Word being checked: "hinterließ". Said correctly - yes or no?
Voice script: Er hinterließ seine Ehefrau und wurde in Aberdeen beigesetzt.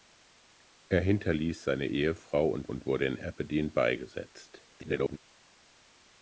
yes